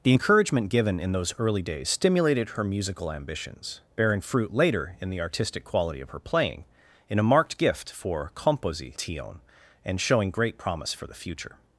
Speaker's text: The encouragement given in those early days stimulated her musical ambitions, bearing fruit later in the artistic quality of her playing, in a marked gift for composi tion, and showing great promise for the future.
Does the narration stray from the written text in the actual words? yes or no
no